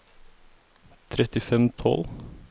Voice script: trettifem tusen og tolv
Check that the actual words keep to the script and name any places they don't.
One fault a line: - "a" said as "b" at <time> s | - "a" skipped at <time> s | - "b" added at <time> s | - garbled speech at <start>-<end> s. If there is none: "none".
- "tusen" skipped at 1.7 s